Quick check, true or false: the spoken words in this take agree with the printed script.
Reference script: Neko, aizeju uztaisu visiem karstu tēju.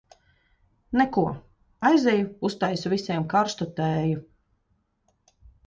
true